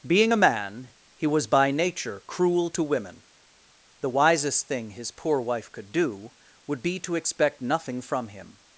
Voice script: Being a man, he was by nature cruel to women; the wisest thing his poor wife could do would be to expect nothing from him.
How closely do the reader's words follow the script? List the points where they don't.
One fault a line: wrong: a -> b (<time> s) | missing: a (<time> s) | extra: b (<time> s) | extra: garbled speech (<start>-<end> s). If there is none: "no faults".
no faults